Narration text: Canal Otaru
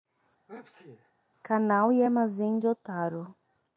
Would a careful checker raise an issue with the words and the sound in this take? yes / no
yes